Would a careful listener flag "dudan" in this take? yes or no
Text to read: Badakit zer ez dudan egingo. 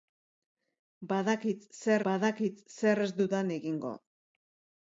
no